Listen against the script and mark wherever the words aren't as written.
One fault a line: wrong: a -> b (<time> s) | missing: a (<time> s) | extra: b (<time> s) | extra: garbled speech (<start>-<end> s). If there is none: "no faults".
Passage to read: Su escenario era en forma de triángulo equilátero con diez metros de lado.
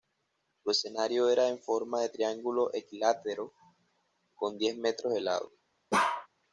no faults